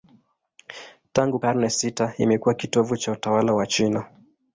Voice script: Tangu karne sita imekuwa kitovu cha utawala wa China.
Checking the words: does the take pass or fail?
pass